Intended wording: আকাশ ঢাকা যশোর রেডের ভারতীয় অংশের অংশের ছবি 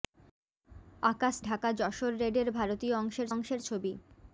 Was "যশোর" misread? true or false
false